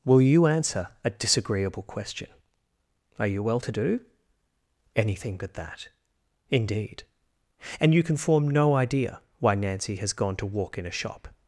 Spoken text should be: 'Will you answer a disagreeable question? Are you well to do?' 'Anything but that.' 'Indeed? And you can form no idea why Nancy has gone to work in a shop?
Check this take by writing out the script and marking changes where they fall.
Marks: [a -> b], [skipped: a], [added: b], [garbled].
'Will you answer a disagreeable question? Are you well to do?' 'Anything but that.' 'Indeed? And you can form no idea why Nancy has gone to [work -> walk] in a shop?